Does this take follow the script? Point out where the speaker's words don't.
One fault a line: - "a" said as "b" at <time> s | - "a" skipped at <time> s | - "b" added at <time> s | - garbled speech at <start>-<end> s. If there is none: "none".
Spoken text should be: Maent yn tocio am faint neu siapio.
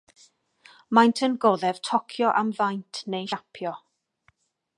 - "goddef" added at 1.4 s